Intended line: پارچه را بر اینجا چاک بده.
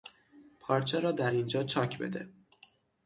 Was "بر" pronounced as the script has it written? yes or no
no